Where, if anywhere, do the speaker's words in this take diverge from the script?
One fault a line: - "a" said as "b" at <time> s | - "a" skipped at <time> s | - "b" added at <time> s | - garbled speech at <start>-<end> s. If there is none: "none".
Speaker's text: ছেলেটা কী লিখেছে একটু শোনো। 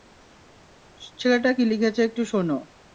none